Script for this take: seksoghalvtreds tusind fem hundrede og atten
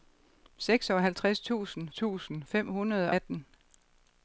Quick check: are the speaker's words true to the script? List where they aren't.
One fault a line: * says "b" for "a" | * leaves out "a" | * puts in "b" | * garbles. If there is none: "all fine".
* puts in "tusind"
* leaves out "og"